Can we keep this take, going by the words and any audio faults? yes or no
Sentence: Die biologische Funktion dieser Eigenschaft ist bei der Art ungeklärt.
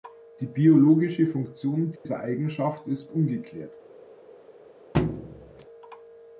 no